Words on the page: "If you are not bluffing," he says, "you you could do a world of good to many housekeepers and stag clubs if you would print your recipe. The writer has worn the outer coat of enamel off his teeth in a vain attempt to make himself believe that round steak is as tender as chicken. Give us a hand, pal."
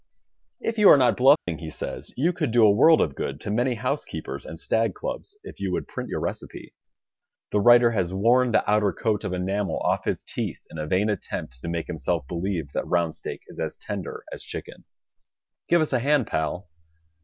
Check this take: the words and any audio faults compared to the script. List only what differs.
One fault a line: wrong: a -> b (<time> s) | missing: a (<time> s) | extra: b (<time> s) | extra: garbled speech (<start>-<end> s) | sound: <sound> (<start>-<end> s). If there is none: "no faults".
sound: dropout (1.4-1.5 s)
missing: you (2.3 s)